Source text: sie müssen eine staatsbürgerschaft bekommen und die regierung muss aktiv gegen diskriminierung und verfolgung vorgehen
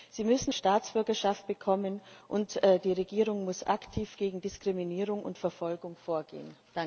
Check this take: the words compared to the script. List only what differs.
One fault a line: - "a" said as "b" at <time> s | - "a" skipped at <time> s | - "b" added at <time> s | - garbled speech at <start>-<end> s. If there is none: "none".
- "eine" skipped at 0.5 s